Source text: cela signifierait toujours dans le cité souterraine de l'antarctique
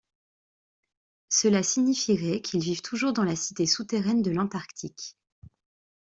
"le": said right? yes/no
no